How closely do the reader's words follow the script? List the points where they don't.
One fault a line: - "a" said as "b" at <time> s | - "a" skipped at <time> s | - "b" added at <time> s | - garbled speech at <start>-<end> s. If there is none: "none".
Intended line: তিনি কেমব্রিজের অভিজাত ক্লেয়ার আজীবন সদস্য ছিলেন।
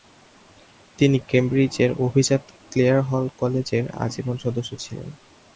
- "হল কলেজের" added at 3.0 s